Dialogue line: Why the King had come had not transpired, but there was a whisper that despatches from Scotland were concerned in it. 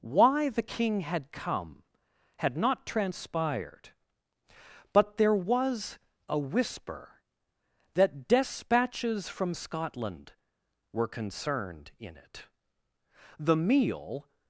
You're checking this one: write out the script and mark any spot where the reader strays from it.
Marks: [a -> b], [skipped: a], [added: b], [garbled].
Why the King had come had not transpired, but there was a whisper that despatches from Scotland were concerned in it. [added: The meal]